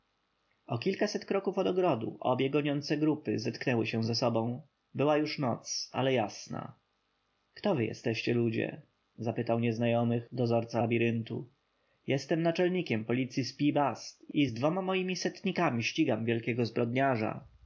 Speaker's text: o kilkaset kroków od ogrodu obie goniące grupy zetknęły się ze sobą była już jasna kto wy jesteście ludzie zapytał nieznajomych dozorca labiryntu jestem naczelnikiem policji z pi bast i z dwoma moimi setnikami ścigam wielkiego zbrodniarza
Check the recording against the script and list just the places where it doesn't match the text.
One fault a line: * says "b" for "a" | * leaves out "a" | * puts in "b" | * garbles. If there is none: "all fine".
* puts in "noc ale"